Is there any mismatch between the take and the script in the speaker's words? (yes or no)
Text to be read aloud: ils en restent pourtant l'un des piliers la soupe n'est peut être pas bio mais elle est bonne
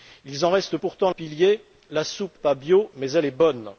yes